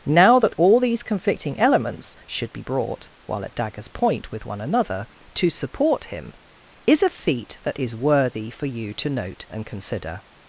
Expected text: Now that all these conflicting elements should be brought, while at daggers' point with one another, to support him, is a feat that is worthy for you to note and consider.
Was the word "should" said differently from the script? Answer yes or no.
no